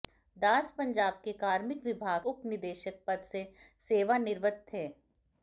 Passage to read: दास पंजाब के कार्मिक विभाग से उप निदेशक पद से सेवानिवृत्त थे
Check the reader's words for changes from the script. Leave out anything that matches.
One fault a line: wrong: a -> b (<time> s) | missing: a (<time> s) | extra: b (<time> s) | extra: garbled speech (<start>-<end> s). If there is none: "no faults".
missing: से (2.2 s)